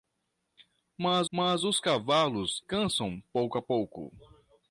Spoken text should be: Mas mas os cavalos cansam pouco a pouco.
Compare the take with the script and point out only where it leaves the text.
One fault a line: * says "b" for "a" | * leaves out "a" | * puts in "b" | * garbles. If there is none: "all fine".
all fine